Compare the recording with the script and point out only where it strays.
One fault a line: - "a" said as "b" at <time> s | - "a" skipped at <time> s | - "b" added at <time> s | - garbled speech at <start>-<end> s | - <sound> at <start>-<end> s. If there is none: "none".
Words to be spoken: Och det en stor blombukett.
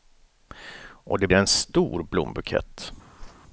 - whoosh at 3.2-3.4 s